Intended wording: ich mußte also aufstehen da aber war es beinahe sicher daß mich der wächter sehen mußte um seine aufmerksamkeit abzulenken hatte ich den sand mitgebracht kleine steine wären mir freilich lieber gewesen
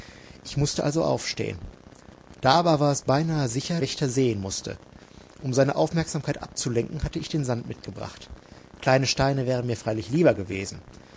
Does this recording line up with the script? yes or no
no